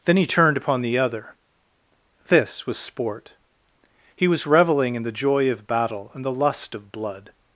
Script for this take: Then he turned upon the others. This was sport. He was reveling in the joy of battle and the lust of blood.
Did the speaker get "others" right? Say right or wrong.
wrong